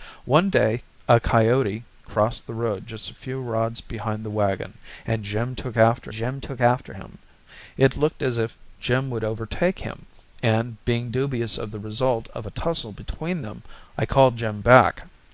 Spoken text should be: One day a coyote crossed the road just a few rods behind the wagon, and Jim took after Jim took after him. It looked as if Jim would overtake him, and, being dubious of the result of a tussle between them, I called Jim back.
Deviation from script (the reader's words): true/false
false